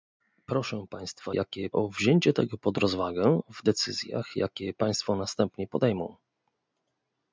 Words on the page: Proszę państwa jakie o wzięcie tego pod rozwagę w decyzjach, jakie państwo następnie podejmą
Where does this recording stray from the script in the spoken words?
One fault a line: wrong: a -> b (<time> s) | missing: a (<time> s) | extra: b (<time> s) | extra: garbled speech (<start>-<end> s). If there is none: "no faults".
no faults